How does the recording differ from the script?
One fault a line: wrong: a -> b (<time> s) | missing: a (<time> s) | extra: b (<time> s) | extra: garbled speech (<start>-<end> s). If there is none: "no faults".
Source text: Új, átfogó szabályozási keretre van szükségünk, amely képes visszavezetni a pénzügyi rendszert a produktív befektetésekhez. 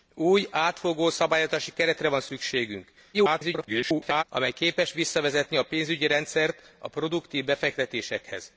extra: garbled speech (3.1-4.2 s)